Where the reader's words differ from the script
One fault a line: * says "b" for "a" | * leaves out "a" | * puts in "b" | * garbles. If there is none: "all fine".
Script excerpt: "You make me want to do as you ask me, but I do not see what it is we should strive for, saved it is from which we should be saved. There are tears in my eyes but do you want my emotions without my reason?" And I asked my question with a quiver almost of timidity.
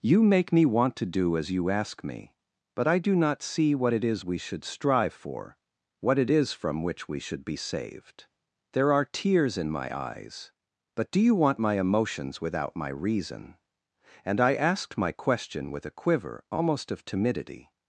* says "what" for "saved"